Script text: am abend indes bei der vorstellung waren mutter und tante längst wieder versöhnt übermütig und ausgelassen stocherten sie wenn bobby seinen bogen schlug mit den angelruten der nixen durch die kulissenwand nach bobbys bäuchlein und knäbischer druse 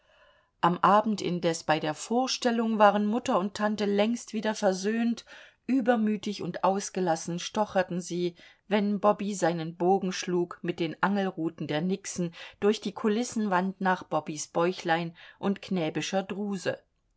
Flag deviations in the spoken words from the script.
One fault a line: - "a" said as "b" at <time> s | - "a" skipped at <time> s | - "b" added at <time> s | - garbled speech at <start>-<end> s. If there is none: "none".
none